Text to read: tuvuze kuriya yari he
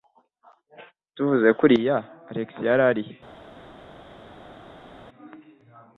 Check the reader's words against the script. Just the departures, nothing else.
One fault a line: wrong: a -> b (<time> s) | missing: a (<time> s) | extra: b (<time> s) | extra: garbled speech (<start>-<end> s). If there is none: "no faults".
extra: alex (2.3 s)